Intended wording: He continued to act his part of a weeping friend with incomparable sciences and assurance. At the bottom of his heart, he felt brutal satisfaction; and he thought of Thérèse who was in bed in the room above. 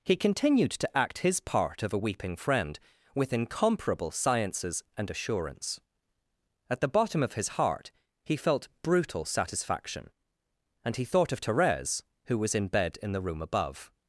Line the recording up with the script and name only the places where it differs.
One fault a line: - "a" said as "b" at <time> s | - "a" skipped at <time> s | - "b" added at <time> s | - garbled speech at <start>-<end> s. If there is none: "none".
none